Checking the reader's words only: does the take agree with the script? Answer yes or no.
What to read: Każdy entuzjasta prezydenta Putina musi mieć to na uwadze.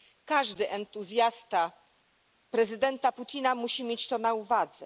yes